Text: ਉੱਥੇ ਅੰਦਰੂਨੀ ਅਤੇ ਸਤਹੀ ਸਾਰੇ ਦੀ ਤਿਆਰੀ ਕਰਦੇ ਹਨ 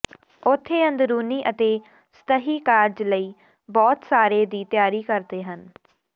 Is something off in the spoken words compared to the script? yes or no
yes